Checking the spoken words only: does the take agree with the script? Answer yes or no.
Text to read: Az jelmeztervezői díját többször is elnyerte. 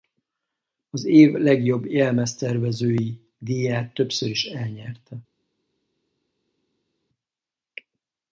no